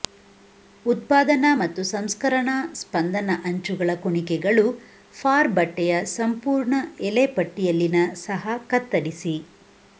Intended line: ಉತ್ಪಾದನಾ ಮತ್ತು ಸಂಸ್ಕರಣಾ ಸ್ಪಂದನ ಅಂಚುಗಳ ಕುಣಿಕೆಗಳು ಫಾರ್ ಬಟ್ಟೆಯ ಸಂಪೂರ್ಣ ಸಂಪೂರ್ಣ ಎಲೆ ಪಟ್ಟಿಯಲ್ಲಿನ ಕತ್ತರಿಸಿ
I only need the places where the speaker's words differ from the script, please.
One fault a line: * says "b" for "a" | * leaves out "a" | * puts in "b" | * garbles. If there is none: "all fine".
* leaves out "ಸಂಪೂರ್ಣ"
* puts in "ಸಹ"